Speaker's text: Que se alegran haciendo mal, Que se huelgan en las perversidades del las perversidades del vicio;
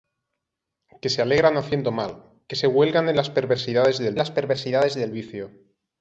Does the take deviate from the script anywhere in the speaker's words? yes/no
no